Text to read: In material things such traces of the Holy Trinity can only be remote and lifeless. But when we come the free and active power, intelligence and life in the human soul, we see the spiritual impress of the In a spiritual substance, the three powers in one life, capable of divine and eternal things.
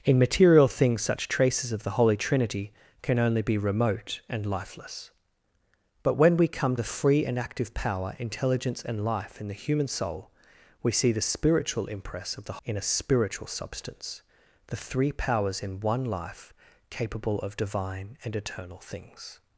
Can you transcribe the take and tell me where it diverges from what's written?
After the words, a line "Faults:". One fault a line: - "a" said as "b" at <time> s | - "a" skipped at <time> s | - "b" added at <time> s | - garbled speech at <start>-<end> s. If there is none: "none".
In material things such traces of the Holy Trinity can only be remote and lifeless. But when we come the free and active power, intelligence and life in the human soul, we see the spiritual impress of the In a spiritual substance, the three powers in one life, capable of divine and eternal things.
Faults:
none